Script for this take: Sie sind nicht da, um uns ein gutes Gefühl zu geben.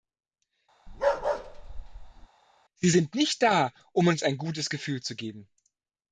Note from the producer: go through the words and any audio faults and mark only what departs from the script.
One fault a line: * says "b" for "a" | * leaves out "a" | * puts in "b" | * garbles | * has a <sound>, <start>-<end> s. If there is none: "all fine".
* has a bark, 0.9-2.3 s